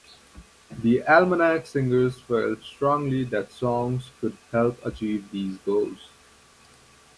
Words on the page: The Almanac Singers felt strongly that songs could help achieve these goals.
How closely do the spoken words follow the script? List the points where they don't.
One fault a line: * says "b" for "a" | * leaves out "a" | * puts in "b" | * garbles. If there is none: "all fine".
all fine